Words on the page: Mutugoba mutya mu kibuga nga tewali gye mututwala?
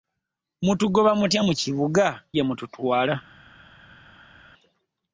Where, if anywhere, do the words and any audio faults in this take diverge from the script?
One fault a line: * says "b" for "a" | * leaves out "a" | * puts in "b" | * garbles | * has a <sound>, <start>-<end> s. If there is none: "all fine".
* leaves out "nga tewali"